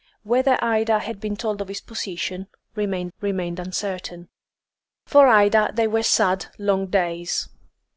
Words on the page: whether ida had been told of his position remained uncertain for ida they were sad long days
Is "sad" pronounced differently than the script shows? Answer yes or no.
no